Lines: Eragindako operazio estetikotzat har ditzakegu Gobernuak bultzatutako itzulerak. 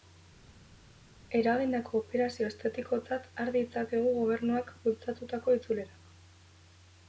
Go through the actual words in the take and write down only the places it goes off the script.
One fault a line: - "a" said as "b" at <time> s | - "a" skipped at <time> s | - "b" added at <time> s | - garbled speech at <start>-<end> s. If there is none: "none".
none